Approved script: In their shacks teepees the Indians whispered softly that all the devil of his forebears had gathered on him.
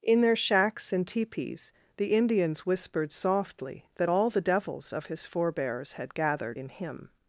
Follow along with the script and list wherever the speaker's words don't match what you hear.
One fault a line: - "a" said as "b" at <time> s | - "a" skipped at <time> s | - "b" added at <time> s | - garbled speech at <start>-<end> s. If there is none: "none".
- "and" added at 0.9 s
- "devil" said as "devils" at 4.4 s
- "on" said as "in" at 6.6 s